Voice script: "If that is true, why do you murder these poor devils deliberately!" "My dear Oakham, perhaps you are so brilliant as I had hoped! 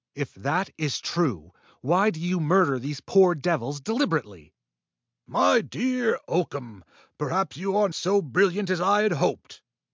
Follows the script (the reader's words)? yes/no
yes